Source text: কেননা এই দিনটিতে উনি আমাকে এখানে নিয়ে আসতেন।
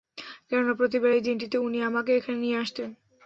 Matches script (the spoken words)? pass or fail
fail